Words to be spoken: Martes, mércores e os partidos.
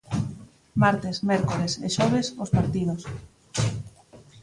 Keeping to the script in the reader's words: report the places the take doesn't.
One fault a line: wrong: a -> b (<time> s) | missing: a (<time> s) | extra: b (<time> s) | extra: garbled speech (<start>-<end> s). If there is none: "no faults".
extra: xoves (2.0 s)